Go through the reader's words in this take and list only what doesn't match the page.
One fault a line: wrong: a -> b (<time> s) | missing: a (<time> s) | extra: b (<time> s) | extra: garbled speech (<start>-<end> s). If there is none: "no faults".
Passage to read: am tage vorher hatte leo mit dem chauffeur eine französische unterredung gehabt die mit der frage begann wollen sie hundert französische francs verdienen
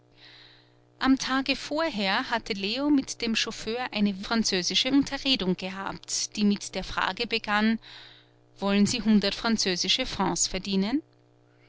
no faults